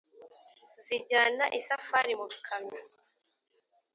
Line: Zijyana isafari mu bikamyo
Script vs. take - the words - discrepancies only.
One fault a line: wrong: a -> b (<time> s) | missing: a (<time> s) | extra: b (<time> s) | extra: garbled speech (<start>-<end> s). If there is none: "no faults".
no faults